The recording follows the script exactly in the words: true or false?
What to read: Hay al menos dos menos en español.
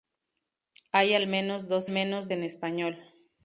true